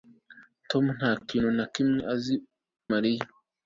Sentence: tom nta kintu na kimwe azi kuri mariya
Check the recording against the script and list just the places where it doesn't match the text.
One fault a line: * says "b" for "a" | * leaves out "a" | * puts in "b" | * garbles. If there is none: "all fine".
* leaves out "kuri"